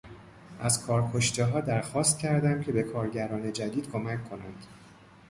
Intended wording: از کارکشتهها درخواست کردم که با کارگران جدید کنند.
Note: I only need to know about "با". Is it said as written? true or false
false